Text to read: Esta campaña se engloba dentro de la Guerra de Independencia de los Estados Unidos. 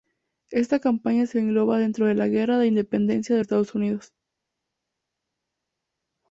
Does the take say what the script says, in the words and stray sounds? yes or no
no